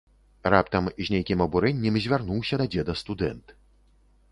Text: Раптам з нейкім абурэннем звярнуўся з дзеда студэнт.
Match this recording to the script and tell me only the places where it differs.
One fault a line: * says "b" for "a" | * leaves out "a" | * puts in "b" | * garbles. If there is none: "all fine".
* says "да" for "з"